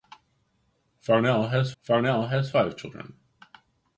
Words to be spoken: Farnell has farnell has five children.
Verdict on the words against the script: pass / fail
pass